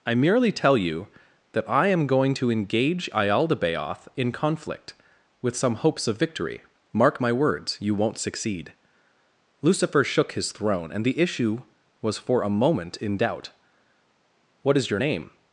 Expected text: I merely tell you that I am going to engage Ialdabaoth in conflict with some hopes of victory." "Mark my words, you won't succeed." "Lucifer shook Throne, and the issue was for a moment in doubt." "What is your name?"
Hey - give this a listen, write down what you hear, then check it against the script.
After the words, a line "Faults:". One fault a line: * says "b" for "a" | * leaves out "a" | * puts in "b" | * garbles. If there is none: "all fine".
I merely tell you that I am going to engage Ialdabaoth in conflict with some hopes of victory." "Mark my words, you won't succeed." "Lucifer shook His throne, and the issue was for a moment in doubt." "What is your name?"
Faults:
* puts in "His"